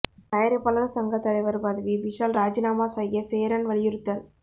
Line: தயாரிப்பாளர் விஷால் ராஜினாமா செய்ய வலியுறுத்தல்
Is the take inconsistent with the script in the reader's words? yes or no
yes